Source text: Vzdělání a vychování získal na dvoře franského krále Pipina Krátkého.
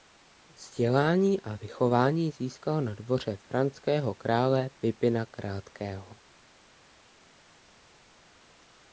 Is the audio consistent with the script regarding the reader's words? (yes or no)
yes